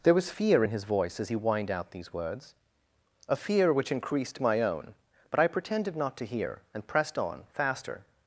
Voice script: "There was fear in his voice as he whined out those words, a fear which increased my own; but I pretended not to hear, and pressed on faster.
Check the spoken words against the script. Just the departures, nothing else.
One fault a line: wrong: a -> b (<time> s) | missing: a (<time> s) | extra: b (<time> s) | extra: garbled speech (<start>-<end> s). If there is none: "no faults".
wrong: those -> these (1.9 s)